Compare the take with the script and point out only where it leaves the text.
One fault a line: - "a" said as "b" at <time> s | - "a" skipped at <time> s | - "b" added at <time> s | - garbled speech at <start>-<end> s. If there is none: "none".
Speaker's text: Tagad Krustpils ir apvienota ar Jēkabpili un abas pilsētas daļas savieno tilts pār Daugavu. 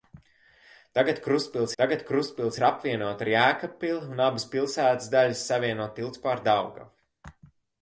- "tagad Krustpils" added at 1.8 s